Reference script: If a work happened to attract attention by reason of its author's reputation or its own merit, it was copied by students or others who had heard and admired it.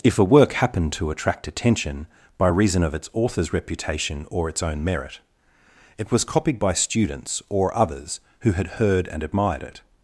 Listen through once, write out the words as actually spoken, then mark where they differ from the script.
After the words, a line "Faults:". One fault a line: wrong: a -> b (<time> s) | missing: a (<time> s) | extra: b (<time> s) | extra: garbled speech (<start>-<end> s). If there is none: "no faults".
If a work happened to attract attention by reason of its author's reputation or its own merit, it was copied by students or others who had heard and admired it.
Faults:
no faults